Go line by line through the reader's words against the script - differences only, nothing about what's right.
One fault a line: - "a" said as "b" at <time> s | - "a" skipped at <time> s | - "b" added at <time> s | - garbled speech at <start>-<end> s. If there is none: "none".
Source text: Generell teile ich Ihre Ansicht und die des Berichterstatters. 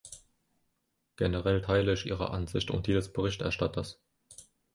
none